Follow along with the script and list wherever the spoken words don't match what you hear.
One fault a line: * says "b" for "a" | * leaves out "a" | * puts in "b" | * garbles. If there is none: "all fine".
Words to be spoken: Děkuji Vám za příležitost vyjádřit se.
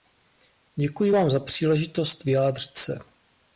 all fine